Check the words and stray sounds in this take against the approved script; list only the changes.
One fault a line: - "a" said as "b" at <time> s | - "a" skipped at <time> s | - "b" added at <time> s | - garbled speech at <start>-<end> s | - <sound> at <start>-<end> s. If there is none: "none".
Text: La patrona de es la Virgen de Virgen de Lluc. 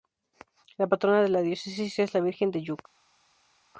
- "la diócesis" added at 1.3 s
- "Virgen de" skipped at 2.6 s